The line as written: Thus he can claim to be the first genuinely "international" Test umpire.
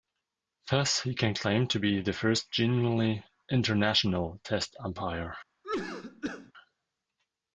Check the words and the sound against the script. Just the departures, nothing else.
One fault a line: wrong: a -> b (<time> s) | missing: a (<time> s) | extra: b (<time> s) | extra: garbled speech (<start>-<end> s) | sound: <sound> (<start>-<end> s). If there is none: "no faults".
sound: cough (5.6-6.5 s)